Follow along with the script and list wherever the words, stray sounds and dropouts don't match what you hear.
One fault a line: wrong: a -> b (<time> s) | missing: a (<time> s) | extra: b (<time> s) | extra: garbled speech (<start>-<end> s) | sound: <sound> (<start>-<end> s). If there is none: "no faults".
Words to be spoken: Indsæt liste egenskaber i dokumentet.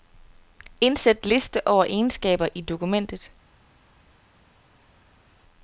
extra: over (1.7 s)